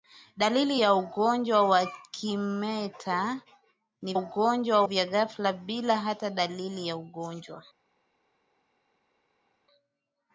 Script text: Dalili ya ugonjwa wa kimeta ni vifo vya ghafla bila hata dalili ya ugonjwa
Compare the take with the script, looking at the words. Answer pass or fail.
fail